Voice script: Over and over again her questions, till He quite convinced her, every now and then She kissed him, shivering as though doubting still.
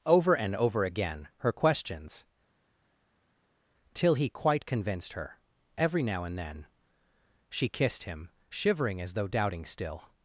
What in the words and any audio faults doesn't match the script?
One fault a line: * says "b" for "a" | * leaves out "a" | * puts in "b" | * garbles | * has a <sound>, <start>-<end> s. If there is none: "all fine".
all fine